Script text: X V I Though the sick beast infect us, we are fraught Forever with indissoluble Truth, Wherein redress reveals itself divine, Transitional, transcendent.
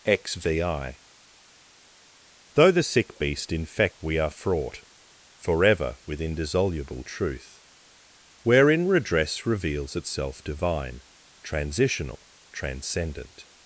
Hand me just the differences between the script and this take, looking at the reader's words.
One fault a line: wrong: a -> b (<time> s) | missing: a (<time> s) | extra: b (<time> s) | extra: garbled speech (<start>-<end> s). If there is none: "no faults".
missing: us (4.0 s)